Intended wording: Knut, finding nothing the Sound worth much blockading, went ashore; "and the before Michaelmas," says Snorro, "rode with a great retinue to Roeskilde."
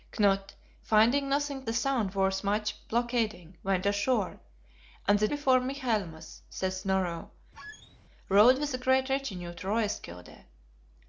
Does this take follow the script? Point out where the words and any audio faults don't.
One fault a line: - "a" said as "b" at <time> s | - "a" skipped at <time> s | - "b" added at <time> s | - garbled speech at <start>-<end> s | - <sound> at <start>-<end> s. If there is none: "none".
- squeak at 7.5-8.0 s